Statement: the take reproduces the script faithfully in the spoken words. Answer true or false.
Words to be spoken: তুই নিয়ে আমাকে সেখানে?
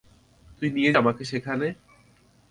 true